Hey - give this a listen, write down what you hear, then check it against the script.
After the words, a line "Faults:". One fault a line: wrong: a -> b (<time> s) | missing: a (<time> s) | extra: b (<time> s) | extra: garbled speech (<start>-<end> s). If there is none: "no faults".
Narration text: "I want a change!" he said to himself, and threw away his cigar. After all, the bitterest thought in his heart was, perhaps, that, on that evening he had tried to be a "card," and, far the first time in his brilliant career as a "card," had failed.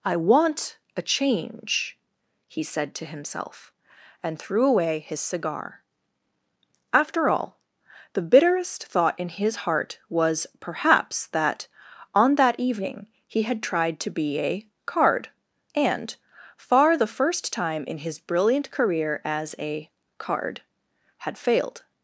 "I want a change!" he said to himself, and threw away his cigar. After all, the bitterest thought in his heart was, perhaps, that, on that evening he had tried to be a "card," and, far the first time in his brilliant career as a "card," had failed.
Faults:
no faults